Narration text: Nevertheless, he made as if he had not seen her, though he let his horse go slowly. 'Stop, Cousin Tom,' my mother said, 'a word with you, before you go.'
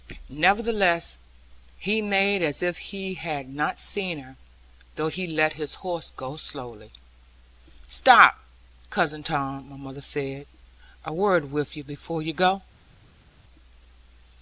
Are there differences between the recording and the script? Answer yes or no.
no